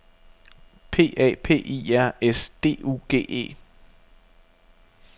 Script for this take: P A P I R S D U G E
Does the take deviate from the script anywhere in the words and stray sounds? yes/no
no